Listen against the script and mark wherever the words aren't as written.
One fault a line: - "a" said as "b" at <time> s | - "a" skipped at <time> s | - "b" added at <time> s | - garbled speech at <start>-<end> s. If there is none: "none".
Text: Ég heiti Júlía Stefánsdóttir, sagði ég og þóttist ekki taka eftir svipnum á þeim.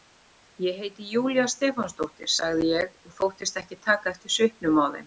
none